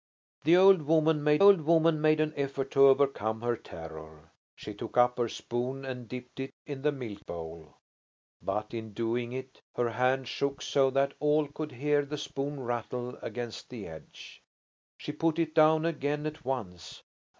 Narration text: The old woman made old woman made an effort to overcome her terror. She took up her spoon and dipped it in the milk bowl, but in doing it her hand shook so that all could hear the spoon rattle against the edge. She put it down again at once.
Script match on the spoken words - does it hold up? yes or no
yes